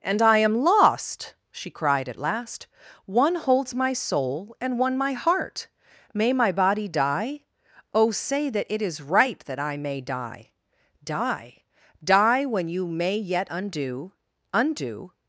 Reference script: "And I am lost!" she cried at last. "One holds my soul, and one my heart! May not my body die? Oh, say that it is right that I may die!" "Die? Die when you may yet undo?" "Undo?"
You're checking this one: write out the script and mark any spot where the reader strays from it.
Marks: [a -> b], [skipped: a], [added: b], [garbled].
"And I am lost!" she cried at last. "One holds my soul, and one my heart! May [skipped: not] my body die? Oh, say that it is right that I may die!" "Die? Die when you may yet undo?" "Undo?"